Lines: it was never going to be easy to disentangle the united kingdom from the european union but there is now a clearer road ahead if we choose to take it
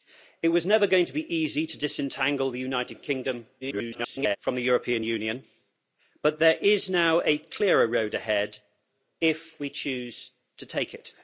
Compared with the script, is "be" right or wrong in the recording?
right